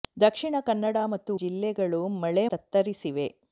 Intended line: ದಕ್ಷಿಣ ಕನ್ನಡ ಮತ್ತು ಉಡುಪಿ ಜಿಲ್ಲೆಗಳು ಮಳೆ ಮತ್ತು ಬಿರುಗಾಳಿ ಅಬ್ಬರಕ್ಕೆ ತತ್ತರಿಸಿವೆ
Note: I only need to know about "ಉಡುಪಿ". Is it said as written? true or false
false